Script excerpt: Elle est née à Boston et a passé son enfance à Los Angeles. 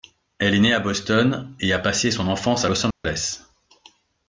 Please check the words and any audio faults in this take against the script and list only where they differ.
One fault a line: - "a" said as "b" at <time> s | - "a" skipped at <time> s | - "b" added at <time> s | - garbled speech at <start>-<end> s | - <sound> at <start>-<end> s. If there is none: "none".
- dropout at 2.9-3.0 s